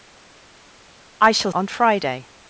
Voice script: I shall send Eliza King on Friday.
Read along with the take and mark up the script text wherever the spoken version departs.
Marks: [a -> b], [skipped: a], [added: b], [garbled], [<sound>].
I shall [skipped: send Eliza King] on Friday.